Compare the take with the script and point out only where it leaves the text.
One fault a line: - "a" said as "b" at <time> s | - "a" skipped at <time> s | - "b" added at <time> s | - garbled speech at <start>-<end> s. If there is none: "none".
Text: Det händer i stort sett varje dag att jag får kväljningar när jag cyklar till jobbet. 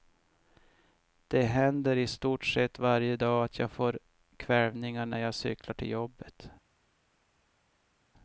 none